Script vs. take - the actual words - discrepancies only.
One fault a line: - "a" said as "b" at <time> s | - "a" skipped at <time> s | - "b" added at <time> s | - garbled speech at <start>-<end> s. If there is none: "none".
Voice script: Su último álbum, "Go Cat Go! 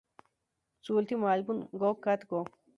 none